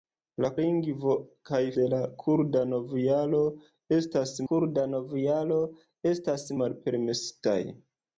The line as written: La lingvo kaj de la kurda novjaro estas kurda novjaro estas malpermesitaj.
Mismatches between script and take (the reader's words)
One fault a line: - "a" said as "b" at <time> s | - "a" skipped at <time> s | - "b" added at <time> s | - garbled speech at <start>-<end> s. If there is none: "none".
none